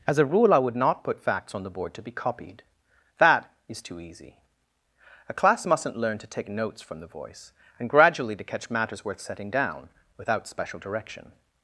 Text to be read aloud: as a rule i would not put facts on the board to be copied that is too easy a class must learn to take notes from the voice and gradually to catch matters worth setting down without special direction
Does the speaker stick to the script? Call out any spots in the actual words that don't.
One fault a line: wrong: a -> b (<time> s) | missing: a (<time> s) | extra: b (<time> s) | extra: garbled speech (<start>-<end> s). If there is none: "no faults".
wrong: must -> mustn't (5.7 s)